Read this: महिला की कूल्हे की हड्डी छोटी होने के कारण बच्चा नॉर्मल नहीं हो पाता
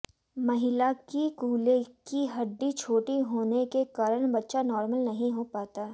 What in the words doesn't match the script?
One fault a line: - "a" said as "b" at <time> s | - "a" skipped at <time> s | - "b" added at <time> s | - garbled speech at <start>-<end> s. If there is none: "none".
none